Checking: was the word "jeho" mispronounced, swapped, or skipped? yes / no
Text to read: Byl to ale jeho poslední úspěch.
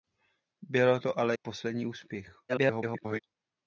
yes